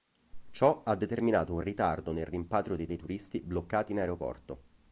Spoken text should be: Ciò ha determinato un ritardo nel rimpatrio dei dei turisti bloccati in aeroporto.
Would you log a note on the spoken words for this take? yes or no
no